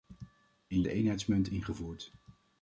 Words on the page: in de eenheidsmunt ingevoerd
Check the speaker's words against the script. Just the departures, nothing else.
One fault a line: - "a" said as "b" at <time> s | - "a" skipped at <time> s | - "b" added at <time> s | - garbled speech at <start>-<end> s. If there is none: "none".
none